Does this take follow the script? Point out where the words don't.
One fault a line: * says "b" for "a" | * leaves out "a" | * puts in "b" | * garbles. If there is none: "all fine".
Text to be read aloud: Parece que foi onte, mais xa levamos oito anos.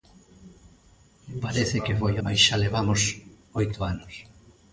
* leaves out "onte"